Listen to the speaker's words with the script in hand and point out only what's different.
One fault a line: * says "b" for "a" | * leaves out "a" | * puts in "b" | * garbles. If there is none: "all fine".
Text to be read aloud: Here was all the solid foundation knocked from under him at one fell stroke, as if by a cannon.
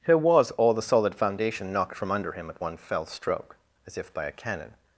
all fine